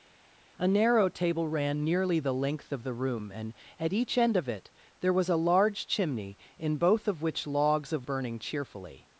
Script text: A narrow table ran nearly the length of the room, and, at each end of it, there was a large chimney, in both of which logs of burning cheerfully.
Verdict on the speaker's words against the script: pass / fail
pass